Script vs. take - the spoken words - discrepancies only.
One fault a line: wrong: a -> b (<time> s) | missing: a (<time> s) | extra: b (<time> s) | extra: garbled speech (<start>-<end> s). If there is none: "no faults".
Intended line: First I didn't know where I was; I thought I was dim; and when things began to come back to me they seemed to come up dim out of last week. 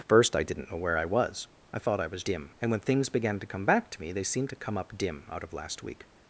no faults